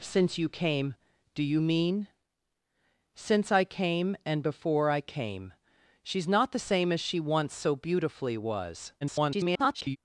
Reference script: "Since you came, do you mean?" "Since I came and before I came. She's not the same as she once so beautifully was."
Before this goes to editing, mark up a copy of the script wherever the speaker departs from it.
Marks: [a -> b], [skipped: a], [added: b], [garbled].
"Since you came, do you mean?" "Since I came and before I came. She's not the same as she once so beautifully was." [garbled]